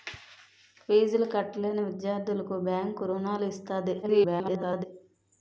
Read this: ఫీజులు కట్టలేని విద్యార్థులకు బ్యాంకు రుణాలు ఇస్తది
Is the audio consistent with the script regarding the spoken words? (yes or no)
no